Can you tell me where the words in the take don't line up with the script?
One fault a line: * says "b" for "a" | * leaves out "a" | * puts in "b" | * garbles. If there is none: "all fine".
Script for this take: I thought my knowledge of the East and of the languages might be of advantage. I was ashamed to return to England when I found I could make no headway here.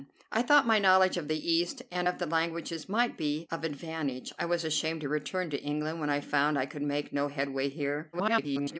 * garbles